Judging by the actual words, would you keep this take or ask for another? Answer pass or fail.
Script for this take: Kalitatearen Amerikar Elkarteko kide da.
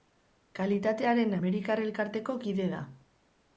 pass